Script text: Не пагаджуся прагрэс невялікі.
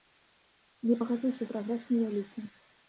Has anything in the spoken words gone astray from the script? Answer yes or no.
no